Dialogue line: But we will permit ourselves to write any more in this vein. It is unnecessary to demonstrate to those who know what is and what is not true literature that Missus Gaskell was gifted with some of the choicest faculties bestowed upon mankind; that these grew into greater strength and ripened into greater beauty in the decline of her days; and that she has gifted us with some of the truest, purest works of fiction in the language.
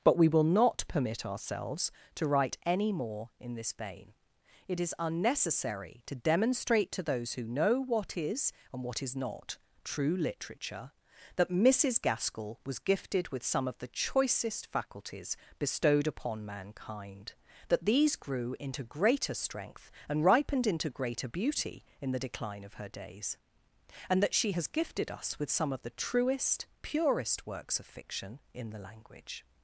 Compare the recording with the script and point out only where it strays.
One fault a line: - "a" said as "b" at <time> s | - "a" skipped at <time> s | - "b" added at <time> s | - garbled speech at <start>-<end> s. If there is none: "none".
- "not" added at 0.4 s